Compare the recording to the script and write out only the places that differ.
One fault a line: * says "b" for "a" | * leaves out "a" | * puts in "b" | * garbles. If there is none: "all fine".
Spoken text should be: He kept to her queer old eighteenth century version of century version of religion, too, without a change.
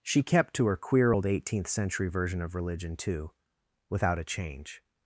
* says "She" for "He"
* leaves out "century version of"